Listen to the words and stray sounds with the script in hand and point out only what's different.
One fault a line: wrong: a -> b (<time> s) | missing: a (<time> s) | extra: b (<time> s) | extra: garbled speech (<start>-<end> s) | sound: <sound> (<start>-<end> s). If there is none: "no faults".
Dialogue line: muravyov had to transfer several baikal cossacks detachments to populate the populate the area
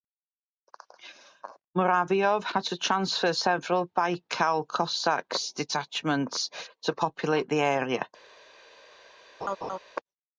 missing: populate the (7.6 s)
sound: laugh (9.4-9.8 s)